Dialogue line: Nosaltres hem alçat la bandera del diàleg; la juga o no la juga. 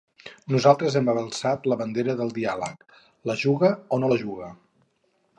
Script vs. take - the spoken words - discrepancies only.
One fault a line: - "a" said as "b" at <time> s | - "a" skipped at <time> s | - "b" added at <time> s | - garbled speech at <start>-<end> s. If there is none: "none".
none